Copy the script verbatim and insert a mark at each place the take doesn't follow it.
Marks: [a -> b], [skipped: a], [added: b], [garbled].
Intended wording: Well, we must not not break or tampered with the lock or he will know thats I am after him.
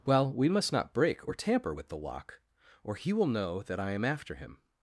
Well, we must not [skipped: not] break or [tampered -> tamper] with the lock or he will know [thats -> that] I am after him.